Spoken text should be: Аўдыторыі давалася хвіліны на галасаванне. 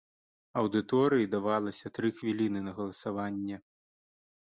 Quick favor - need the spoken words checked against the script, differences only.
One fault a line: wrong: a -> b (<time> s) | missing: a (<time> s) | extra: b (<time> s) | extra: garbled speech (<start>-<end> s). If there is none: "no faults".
extra: тры (2.0 s)